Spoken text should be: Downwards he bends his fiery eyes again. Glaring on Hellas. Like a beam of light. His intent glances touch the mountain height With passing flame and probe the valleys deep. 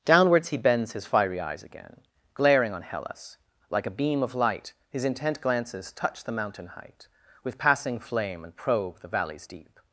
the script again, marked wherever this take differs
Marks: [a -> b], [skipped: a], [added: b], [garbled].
Downwards he bends his fiery eyes again. Glaring on Hellas. Like a beam of light. His intent glances touch the mountain height With passing flame and probe the valleys deep.